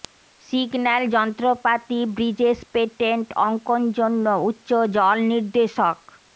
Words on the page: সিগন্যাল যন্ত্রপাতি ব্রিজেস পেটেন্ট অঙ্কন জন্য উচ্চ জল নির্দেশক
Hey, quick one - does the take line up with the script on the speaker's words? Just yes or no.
yes